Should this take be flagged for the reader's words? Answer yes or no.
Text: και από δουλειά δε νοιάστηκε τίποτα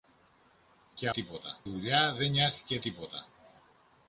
yes